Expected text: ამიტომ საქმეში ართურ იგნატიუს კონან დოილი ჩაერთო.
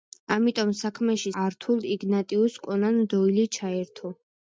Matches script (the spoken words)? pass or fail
pass